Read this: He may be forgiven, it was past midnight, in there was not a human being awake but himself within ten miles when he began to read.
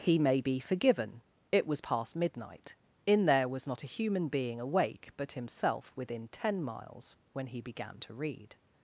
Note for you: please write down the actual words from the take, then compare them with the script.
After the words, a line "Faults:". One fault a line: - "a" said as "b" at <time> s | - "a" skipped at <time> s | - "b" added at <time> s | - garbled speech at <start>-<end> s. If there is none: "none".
He may be forgiven, it was past midnight, in there was not a human being awake but himself within ten miles when he began to read.
Faults:
none